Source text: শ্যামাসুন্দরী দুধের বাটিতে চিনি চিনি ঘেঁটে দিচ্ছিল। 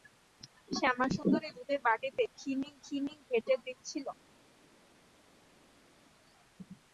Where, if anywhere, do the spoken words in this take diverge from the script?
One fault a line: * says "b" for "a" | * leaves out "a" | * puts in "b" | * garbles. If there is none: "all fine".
all fine